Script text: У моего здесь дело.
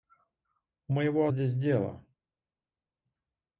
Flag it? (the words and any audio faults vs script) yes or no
no